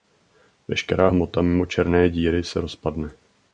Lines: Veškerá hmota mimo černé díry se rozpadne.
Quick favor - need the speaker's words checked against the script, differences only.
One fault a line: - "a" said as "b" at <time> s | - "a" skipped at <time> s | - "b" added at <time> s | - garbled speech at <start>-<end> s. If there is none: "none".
none